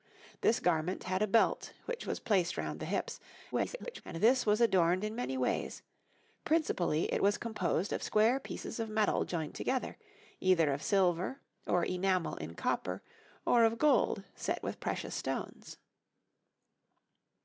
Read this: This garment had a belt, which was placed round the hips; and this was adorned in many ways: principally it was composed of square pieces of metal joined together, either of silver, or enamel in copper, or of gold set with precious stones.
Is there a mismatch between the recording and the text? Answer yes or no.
yes